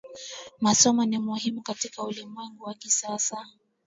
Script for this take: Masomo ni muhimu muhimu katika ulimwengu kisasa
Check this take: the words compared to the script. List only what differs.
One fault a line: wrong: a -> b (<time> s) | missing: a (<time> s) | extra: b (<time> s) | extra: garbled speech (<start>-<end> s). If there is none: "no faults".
missing: muhimu (1.6 s)
extra: wa (2.6 s)